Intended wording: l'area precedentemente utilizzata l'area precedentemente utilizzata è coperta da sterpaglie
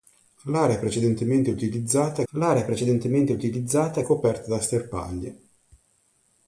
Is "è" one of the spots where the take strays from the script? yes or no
no